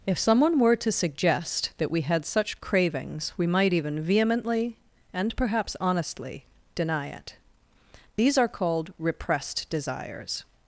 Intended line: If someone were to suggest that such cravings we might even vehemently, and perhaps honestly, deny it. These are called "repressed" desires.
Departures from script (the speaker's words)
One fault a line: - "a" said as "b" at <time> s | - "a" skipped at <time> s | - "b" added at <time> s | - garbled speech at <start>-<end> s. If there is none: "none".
- "we had" added at 1.9 s